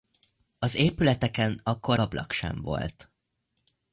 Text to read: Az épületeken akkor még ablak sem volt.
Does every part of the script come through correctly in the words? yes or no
no